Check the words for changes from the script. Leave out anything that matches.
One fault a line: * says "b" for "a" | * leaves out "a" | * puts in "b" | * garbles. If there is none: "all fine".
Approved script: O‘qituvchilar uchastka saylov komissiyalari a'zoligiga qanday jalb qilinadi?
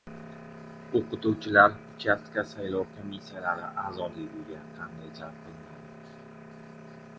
all fine